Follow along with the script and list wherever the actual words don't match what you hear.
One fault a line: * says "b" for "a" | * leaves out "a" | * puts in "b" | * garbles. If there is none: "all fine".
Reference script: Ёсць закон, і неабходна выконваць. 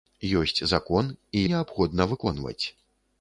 all fine